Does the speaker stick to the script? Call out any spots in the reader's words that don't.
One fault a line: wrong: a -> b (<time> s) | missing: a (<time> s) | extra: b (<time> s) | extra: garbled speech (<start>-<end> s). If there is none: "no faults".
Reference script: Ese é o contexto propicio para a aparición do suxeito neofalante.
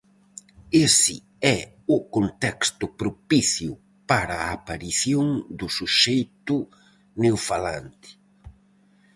no faults